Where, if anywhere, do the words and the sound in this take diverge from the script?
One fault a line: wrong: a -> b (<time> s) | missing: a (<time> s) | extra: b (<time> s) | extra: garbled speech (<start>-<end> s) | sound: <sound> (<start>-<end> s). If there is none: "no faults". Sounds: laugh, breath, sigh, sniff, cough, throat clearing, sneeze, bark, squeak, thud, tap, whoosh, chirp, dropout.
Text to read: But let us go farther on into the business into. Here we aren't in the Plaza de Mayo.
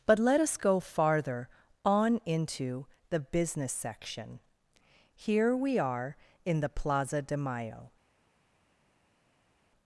wrong: into -> section (3.7 s)
wrong: aren't -> are (5.8 s)